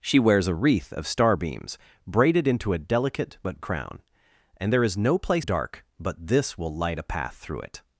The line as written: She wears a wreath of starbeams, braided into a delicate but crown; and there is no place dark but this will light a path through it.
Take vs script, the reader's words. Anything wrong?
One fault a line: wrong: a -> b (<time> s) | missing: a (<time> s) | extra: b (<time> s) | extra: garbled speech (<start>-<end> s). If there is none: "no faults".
no faults